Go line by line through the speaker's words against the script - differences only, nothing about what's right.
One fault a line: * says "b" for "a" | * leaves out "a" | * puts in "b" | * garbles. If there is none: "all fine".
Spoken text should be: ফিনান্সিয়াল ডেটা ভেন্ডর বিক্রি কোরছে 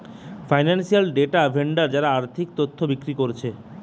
* puts in "যারা আর্থিক তথ্য"